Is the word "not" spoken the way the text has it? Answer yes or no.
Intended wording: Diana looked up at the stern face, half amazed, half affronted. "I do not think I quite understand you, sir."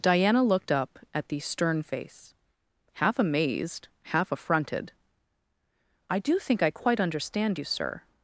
no